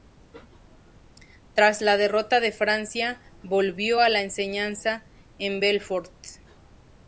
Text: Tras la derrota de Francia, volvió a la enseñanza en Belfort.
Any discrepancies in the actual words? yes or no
no